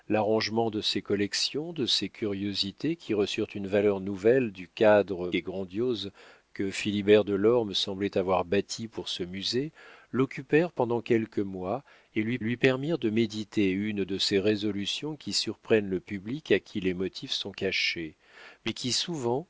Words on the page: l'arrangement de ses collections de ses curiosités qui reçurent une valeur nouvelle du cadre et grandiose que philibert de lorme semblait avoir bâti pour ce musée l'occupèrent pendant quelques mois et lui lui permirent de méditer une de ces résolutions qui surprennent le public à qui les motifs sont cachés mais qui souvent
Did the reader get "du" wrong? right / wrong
right